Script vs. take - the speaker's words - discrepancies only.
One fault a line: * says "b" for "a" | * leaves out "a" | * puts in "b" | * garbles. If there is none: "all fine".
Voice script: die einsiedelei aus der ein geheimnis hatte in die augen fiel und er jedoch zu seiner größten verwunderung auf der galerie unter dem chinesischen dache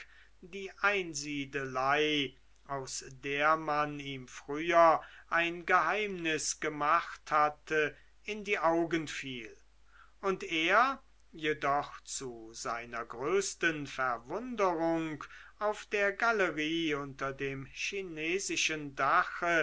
* puts in "man ihm früher"
* puts in "gemacht"